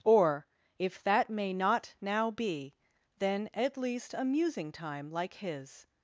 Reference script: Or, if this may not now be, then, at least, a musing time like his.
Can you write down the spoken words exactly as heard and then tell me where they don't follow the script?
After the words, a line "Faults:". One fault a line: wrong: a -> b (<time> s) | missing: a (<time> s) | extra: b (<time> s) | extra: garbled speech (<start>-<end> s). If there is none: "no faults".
Or, if that may not now be, then, at least, a musing time like his.
Faults:
wrong: this -> that (1.0 s)